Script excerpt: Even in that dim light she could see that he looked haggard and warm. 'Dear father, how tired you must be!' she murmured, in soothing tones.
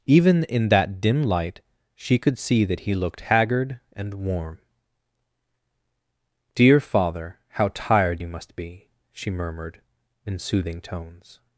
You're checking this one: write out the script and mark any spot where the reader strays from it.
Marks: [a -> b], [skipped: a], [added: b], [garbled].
Even in that dim light she could see that he looked haggard and warm. 'Dear father, how tired you must be!' she murmured, in soothing tones.